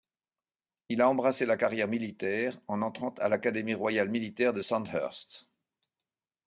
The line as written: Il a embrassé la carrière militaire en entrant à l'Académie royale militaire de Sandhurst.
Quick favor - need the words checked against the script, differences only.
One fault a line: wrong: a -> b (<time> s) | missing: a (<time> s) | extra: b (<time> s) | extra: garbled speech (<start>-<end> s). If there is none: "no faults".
no faults